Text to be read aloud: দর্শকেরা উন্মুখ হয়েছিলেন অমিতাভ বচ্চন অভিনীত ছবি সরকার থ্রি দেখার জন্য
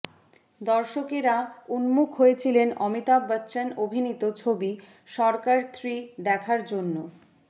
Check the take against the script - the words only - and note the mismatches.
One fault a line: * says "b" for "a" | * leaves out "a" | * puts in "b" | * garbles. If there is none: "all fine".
all fine